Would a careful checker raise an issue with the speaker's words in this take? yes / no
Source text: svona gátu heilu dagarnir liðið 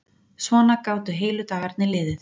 no